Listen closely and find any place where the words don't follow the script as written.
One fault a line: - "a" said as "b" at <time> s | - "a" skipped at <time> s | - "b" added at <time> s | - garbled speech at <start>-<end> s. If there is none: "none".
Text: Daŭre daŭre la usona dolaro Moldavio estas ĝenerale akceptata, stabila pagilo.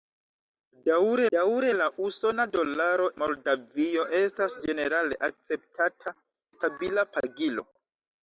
none